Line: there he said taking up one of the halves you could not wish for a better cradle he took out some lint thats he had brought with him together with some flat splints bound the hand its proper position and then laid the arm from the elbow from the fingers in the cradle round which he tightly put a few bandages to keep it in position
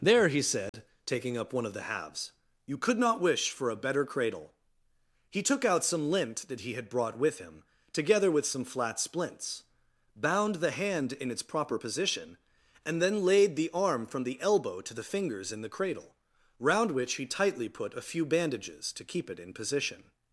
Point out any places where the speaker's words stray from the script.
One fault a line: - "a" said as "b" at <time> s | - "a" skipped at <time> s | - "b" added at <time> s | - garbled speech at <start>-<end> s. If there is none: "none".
- "thats" said as "that" at 6.5 s
- "in" added at 11.1 s
- "from" said as "to" at 14.8 s